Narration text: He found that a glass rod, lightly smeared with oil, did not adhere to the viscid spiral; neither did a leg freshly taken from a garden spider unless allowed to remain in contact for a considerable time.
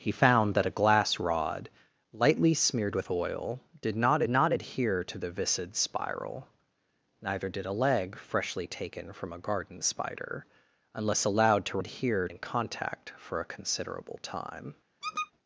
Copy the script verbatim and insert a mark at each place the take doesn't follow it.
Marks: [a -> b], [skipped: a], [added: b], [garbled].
He found that a glass rod, lightly smeared with oil, did not [added: not] adhere to the viscid spiral; neither did a leg freshly taken from a garden spider unless allowed to [remain -> adhere] in contact for a considerable time.